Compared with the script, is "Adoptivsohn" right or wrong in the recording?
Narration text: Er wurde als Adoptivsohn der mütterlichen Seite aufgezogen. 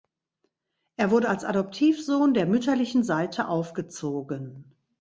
right